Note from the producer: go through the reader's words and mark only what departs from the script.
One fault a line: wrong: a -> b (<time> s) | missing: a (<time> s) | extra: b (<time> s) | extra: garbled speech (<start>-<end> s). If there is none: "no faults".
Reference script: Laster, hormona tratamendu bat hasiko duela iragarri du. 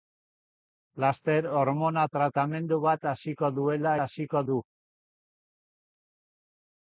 wrong: iragarri -> hasiko (4.0 s)